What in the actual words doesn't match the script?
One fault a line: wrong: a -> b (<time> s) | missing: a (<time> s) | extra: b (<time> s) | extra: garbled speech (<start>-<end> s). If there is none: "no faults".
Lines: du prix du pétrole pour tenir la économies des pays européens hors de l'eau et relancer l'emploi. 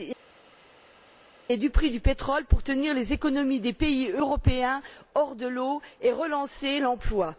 wrong: la -> les (2.9 s)